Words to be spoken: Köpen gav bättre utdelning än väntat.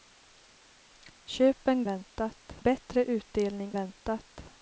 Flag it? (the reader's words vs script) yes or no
yes